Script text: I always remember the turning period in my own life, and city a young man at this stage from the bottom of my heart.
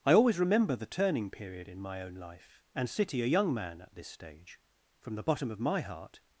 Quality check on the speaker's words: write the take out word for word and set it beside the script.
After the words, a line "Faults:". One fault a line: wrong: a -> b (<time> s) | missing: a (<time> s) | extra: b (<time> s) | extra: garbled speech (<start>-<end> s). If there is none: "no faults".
I always remember the turning period in my own life, and city a young man at this stage from the bottom of my heart.
Faults:
no faults